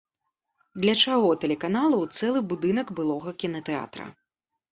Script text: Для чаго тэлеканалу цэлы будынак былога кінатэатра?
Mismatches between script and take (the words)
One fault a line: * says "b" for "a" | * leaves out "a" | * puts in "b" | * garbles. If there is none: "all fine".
all fine